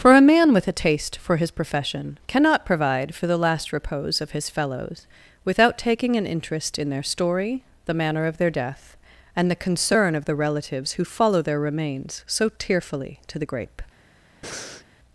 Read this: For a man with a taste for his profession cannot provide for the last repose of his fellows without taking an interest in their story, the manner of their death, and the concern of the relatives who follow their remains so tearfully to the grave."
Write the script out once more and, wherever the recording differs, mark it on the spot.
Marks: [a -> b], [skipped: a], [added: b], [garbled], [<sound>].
For a man with a taste for his profession cannot provide for the last repose of his fellows without taking an interest in their story, the manner of their death, and the concern of the relatives who follow their remains so tearfully to the [grave." -> grape] [breath]